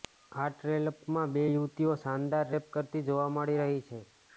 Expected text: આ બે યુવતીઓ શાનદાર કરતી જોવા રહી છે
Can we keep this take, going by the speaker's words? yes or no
no